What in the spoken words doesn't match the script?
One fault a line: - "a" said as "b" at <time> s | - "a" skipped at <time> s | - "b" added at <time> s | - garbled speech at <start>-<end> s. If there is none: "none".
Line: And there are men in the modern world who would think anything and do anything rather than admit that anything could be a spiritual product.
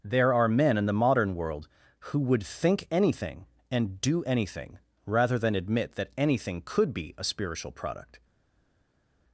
- "And" skipped at 0.0 s